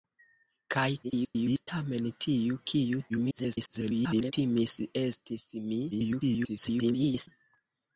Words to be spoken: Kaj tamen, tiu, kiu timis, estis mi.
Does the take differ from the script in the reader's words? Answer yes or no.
yes